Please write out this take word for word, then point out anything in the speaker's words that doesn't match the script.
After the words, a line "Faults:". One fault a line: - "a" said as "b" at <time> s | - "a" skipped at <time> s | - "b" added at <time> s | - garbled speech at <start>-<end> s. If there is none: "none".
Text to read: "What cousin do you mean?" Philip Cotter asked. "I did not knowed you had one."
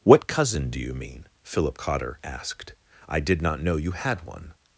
"What cousin do you mean?" Philip Cotter asked. "I did not know you had one."
Faults:
- "knowed" said as "know" at 3.6 s